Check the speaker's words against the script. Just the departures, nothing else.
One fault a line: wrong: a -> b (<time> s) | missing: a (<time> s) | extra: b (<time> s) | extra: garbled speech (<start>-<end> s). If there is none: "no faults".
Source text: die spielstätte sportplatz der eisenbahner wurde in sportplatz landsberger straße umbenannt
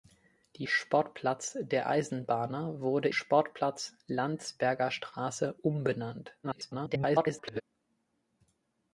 missing: spielstätte (0.7 s)
missing: in (3.1 s)
extra: garbled speech (6.4-7.6 s)